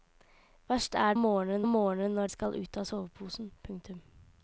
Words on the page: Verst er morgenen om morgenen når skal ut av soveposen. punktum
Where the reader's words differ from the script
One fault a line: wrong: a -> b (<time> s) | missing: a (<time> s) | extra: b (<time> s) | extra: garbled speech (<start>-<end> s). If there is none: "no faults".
no faults